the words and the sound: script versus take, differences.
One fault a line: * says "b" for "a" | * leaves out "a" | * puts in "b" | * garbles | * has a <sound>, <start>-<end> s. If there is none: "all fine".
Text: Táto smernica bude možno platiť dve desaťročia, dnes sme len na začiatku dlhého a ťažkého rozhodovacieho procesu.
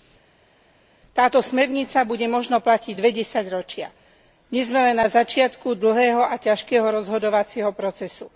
all fine